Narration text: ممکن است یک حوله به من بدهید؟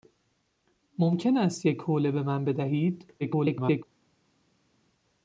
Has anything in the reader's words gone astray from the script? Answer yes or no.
yes